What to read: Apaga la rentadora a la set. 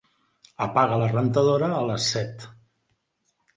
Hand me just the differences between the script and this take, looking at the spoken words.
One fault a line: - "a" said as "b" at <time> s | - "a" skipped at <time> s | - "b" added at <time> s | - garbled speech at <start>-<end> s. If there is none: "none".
- "la" said as "les" at 1.9 s